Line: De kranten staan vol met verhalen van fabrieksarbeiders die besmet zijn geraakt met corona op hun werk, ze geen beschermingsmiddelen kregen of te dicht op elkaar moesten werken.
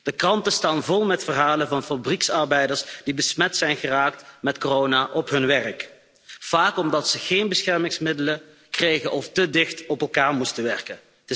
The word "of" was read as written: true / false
true